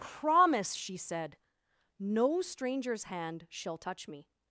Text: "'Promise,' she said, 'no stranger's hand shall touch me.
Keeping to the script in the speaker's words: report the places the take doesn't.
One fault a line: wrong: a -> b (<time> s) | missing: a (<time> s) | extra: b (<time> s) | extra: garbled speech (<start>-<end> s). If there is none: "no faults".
no faults